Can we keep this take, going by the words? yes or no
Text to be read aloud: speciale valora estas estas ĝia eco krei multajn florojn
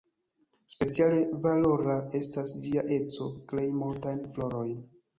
no